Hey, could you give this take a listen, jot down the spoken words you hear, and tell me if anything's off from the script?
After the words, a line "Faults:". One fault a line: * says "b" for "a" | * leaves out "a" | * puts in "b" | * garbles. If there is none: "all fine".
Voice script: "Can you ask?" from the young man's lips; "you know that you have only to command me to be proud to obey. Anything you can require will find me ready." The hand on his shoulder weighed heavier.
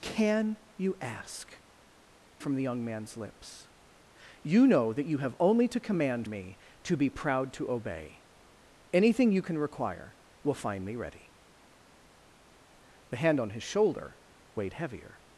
"Can you ask?" from the young man's lips; "you know that you have only to command me to be proud to obey. Anything you can require will find me ready." The hand on his shoulder weighed heavier.
Faults:
all fine